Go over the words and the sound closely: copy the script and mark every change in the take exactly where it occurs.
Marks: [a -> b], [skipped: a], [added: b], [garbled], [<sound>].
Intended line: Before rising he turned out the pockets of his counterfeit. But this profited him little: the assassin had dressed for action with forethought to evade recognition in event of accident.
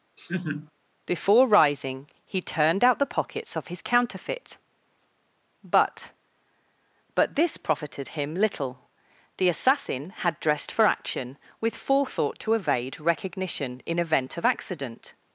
[laugh] Before rising he turned out the pockets of his counterfeit. But [added: But] this profited him little: the assassin had dressed for action with forethought to evade recognition in event of accident.